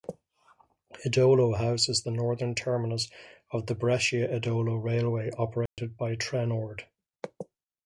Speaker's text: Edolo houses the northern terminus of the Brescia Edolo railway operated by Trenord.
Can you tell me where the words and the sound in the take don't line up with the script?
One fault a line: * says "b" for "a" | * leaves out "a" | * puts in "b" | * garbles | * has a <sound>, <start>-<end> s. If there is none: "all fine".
* has a dropout, 5.7-5.8 s